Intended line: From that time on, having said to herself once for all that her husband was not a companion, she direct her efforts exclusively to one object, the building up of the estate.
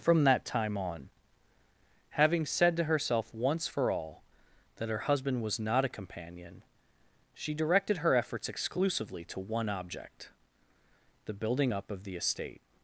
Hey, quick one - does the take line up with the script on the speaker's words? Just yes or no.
no